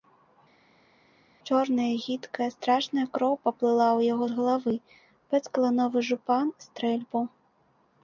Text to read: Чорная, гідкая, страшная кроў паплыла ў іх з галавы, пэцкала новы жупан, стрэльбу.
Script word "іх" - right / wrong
wrong